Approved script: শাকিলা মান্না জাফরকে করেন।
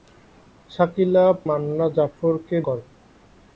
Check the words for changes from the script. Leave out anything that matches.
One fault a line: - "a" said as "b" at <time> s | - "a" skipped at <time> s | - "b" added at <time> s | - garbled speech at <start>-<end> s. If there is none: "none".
none